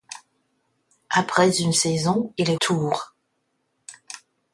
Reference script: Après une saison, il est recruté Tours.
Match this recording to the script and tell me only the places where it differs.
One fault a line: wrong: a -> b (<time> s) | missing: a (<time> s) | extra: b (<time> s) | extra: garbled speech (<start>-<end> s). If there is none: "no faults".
missing: recruté (2.5 s)